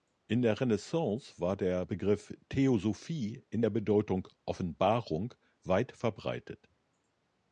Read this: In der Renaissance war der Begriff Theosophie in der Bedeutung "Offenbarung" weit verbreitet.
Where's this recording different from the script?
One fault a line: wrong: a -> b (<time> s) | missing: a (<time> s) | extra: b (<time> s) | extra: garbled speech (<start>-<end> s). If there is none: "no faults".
no faults